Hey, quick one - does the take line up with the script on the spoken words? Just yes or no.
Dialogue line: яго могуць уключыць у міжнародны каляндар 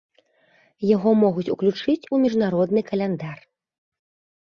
yes